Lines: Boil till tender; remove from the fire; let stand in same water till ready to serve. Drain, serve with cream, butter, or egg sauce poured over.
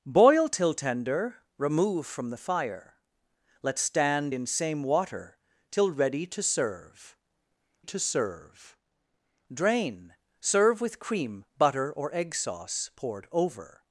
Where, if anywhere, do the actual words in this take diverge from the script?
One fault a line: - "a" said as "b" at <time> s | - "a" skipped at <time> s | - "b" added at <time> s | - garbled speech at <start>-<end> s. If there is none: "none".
- "to serve" added at 7.8 s